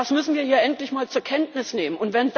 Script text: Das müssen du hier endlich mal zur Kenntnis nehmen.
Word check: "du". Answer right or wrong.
wrong